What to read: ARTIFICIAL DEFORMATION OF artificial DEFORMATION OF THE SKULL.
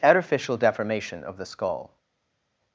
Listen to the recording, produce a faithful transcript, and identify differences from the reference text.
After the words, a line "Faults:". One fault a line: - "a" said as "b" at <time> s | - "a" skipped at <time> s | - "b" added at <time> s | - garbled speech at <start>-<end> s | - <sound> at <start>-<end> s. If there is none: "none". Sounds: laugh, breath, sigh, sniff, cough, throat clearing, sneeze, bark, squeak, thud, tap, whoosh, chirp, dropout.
ARTIFICIAL DEFORMATION OF THE SKULL.
Faults:
- "artificial DEFORMATION OF" skipped at 1.4 s